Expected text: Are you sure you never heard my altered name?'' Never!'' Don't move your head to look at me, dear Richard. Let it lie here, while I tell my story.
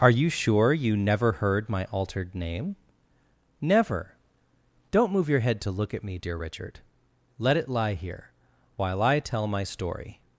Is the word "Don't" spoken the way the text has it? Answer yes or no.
yes